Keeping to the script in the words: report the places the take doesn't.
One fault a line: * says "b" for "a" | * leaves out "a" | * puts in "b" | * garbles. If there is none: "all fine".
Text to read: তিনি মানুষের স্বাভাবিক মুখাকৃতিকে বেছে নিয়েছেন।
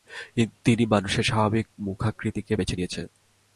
all fine